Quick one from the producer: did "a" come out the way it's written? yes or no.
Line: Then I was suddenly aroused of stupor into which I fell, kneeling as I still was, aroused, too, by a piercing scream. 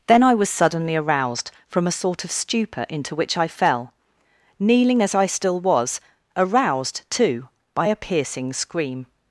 yes